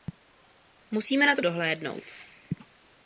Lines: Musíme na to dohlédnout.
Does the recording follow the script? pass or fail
pass